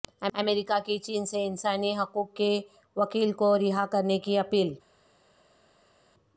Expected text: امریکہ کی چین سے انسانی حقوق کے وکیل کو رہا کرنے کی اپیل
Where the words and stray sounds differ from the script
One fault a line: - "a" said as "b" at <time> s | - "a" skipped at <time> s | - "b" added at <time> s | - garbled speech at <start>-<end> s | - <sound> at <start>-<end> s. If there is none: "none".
none